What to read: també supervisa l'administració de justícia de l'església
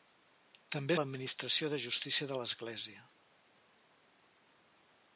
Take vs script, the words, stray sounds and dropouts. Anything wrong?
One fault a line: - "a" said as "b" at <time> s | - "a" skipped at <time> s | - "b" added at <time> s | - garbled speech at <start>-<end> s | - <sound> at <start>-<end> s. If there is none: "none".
- "supervisa" skipped at 1.0 s